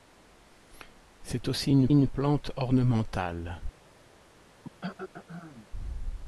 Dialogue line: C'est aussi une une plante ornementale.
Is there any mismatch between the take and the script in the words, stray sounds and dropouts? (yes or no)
yes